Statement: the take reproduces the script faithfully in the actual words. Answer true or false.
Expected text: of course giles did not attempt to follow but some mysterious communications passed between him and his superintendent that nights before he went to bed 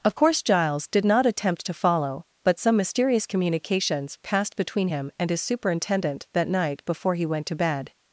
false